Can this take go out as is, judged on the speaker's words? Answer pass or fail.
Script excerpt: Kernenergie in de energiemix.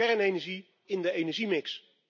pass